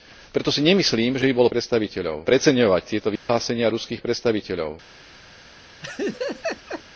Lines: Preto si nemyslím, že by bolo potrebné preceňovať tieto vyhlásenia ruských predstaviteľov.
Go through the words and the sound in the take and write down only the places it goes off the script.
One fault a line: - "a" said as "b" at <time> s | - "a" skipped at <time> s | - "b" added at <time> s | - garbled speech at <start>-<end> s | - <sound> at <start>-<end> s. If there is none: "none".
- "potrebné" said as "predstaviteľov" at 1.5 s
- dropout at 3.2-3.3 s
- laugh at 5.8-6.8 s